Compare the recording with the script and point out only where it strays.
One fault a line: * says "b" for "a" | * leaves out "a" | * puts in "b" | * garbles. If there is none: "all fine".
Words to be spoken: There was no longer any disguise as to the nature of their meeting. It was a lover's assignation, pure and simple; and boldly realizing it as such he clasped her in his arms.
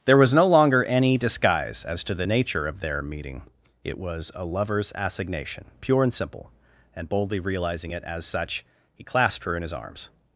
all fine